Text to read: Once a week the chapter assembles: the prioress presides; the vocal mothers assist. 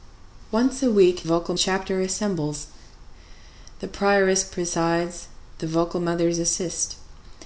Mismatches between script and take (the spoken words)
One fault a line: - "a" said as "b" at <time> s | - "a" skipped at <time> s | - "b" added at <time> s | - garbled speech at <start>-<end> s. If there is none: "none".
- "the" said as "vocal" at 1.2 s